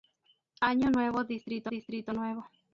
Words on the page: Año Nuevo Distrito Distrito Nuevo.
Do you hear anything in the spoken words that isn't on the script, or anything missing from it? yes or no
no